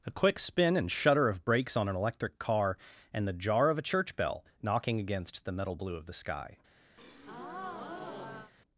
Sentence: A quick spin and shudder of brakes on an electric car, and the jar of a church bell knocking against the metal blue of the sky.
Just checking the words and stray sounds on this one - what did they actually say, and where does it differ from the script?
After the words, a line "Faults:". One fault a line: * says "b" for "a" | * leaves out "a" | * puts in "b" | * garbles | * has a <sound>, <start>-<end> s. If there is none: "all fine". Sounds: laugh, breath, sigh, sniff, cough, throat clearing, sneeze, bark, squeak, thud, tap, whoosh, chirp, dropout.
A quick spin and shudder of brakes on an electric car, and the jar of a church bell knocking against the metal blue of the sky.
Faults:
* has a breath, 7.0-8.5 s